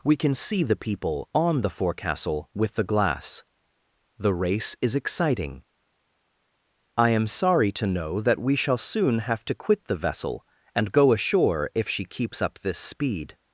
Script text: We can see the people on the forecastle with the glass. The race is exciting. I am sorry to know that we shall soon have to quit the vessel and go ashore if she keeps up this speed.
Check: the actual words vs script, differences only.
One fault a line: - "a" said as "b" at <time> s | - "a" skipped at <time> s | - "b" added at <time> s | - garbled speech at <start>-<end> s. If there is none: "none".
none